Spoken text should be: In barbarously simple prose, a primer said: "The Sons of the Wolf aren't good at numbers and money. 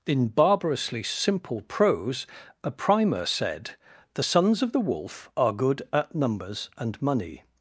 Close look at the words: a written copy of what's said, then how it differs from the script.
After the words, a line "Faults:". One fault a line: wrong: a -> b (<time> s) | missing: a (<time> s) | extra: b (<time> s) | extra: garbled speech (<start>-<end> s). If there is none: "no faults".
In barbarously simple prose, a primer said: "The Sons of the Wolf are good at numbers and money.
Faults:
wrong: aren't -> are (5.3 s)